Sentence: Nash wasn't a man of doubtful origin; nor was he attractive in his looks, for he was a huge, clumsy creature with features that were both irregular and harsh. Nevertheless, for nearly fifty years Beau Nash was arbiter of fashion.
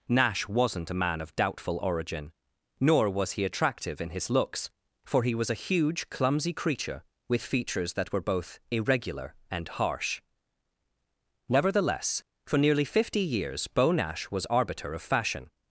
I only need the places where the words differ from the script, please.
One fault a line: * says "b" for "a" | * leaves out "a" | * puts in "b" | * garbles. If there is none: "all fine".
all fine